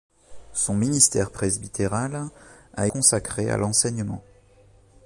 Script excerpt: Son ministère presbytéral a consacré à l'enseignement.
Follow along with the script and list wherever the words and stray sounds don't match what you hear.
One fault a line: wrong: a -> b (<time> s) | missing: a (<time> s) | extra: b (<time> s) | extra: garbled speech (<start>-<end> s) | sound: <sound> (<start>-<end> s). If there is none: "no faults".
no faults